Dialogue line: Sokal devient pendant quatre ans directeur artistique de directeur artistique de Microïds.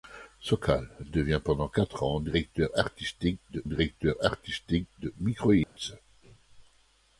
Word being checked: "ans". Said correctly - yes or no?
yes